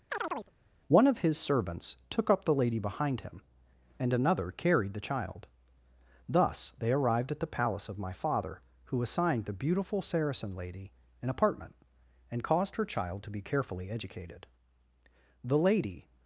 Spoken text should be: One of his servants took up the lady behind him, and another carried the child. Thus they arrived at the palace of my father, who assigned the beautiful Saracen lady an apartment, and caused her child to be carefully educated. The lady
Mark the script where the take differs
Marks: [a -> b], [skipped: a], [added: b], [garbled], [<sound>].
[chirp] One of his servants took up the lady behind him, and another carried the child. Thus they arrived at the palace of my father, who assigned the beautiful Saracen lady an apartment, and caused her child to be carefully educated. The lady